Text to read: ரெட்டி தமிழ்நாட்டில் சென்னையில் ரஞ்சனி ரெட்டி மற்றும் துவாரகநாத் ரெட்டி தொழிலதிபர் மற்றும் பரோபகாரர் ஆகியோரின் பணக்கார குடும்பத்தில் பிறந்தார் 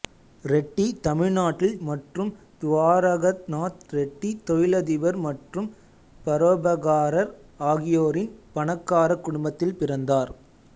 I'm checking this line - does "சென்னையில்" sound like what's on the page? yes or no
no